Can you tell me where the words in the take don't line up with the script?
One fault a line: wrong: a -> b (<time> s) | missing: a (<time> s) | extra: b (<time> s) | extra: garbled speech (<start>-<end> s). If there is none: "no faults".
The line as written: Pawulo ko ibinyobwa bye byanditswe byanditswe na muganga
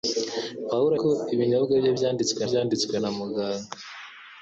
no faults